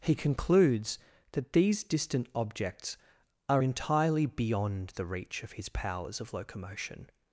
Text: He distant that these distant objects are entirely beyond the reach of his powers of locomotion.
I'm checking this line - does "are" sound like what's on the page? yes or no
yes